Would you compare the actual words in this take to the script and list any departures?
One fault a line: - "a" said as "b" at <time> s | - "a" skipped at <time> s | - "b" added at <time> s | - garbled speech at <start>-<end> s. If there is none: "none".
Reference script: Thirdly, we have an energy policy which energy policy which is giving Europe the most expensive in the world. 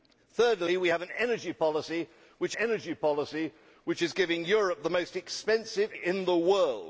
none